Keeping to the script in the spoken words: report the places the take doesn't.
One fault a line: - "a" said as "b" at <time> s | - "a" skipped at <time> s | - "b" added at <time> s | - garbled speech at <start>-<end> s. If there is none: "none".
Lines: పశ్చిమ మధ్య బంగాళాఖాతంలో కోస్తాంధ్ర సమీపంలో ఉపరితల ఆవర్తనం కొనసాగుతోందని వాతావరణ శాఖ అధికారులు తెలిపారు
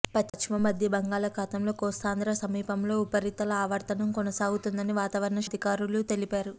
- "శాఖ" skipped at 5.4 s